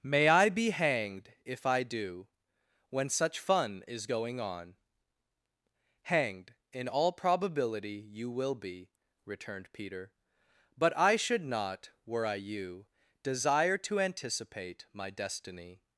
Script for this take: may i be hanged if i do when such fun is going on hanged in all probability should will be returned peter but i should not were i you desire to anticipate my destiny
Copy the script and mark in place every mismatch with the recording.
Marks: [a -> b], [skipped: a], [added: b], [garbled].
may i be hanged if i do when such fun is going on hanged in all probability [should -> you] will be returned peter but i should not were i you desire to anticipate my destiny